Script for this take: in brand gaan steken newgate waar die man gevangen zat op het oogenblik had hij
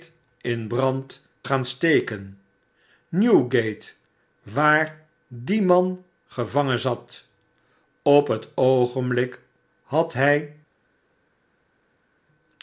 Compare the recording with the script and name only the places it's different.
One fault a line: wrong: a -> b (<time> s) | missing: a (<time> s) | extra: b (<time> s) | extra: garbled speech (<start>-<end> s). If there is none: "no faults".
no faults